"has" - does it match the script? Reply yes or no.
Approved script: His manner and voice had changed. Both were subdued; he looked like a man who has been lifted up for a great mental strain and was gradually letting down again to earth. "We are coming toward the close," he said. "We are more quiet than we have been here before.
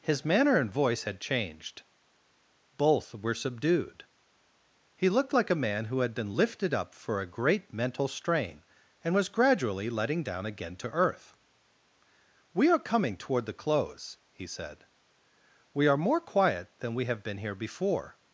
no